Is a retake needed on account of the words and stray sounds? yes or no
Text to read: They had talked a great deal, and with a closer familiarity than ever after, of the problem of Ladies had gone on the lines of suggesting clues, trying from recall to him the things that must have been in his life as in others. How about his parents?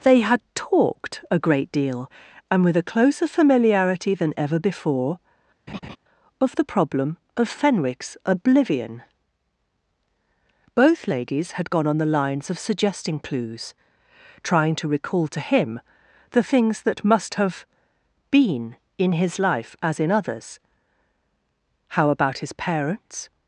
yes